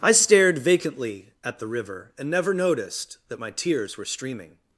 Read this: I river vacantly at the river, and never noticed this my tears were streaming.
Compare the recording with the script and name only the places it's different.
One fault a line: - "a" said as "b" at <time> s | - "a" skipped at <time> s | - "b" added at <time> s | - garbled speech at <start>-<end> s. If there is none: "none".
- "river" said as "stared" at 0.1 s
- "this" said as "that" at 3.3 s